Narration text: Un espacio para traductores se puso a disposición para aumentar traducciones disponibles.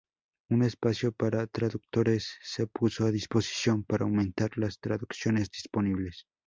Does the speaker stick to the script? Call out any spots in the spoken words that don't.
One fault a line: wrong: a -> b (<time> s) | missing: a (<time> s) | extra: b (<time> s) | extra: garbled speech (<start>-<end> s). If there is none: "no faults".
extra: las (4.6 s)